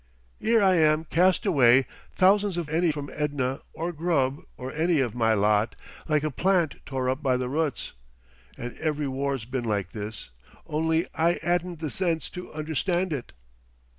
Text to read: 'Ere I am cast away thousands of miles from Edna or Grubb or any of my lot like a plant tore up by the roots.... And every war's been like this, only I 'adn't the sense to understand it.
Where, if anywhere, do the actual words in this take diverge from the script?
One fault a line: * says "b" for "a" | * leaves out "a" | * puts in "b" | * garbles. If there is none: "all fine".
* says "any" for "miles"